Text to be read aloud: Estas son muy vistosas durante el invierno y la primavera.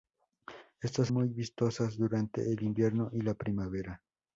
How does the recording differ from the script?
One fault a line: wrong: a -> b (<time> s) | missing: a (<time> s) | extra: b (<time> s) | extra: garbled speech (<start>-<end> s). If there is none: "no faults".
missing: son (1.1 s)